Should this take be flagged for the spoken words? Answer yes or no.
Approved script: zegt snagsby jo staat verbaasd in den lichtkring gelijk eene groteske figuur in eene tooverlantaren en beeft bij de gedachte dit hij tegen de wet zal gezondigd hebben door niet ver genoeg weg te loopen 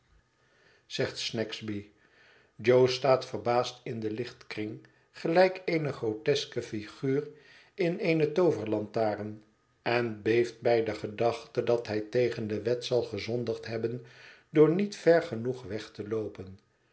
yes